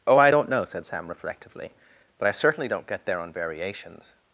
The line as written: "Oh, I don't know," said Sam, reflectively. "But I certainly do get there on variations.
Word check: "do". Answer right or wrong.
wrong